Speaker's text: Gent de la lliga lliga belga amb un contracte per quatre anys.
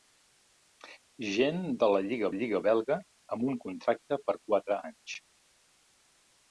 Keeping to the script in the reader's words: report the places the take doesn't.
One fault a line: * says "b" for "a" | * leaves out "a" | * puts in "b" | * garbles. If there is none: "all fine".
all fine